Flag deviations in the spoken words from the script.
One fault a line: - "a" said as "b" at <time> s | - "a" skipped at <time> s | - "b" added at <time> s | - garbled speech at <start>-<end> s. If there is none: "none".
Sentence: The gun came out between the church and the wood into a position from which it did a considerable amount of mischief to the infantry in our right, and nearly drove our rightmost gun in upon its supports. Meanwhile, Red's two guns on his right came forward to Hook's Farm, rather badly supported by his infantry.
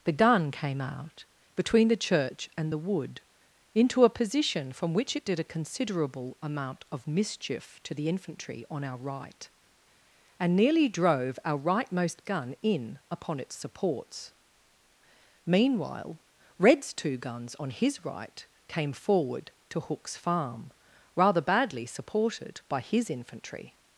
- "in" said as "on" at 8.7 s